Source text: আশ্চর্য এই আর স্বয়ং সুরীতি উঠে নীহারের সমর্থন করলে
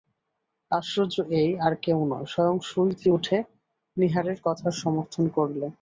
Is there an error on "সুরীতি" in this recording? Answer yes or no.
no